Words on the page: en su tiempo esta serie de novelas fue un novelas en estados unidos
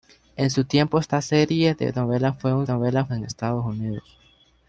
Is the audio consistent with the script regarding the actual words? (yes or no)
yes